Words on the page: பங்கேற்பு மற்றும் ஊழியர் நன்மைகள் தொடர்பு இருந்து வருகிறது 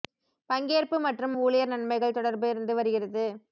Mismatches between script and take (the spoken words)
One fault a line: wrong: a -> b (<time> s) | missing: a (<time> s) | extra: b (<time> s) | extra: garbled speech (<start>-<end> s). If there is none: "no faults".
no faults